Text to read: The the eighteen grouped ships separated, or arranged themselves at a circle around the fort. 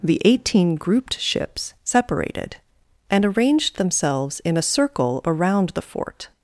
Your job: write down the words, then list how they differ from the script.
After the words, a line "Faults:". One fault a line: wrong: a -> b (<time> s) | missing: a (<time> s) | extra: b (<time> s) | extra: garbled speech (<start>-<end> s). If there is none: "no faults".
The eighteen grouped ships separated, and arranged themselves in a circle around the fort.
Faults:
missing: the (0.2 s)
wrong: or -> and (3.1 s)
wrong: at -> in (4.4 s)